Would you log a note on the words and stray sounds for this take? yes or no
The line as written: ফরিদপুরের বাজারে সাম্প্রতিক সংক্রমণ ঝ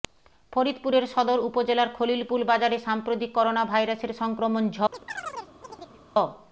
yes